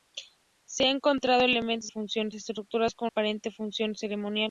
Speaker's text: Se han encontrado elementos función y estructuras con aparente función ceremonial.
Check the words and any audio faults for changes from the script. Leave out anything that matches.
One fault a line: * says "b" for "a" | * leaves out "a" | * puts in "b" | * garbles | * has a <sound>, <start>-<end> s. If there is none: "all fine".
all fine